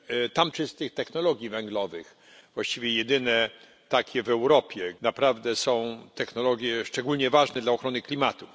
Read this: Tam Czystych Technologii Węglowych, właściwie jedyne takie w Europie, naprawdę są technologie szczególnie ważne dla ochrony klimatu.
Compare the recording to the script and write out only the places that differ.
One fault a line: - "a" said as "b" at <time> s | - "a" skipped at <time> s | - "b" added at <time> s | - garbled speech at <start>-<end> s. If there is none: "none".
none